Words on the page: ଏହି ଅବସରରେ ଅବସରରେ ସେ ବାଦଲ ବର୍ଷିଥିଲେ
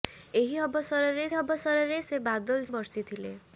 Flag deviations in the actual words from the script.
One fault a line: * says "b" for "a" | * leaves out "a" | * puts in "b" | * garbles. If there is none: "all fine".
all fine